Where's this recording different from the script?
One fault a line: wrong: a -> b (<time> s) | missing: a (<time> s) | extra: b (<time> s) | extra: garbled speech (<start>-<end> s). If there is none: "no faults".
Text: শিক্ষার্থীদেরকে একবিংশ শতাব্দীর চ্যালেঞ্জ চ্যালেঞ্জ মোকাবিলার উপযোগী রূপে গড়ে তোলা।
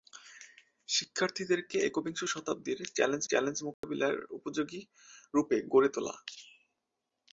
no faults